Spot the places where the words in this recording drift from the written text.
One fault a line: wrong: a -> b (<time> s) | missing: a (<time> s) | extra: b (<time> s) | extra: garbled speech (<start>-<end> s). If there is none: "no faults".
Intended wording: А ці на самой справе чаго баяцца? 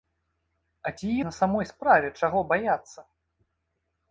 no faults